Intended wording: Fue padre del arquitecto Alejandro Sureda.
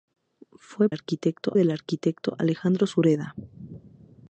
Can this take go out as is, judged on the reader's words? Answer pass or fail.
fail